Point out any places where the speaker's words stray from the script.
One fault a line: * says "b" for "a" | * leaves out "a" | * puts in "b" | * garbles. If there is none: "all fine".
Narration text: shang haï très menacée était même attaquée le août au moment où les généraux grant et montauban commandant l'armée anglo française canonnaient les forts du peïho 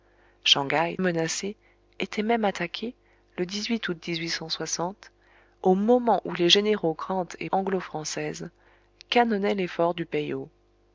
* leaves out "très"
* leaves out "montauban commandant l'armée"